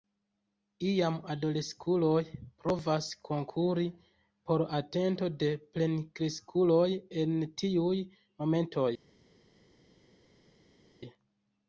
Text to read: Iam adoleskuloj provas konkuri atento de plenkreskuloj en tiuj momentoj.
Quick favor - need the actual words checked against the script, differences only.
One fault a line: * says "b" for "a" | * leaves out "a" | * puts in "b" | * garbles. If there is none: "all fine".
* puts in "por"